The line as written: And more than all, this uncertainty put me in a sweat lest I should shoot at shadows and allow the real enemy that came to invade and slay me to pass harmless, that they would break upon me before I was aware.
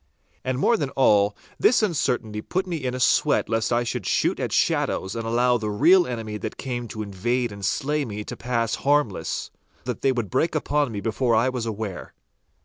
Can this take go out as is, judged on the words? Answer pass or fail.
pass